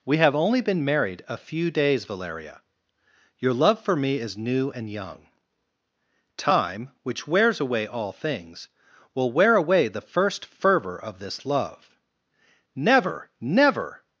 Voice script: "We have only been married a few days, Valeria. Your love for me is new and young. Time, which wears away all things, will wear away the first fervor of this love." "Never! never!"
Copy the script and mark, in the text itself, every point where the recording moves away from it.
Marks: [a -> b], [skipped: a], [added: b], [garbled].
"We have only been married a few days, Valeria. Your love for me is new and young. Time, which wears away all things, will wear away the first fervor of this love." "Never! never!"